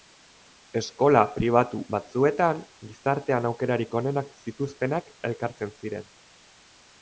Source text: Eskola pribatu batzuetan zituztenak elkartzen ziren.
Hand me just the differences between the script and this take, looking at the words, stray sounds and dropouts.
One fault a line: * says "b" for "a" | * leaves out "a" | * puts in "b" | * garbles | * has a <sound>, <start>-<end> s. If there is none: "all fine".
* puts in "gizartean aukerarik onenak"